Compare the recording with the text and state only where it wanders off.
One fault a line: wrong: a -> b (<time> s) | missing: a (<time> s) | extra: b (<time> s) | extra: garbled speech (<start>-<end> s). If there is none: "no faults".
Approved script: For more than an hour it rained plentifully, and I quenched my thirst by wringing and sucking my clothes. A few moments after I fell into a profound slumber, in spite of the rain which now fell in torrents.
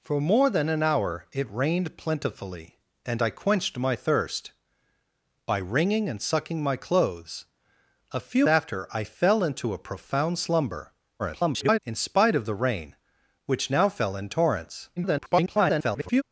missing: moments (8.5 s)
extra: garbled speech (11.2-11.8 s)
extra: garbled speech (15.0-16.2 s)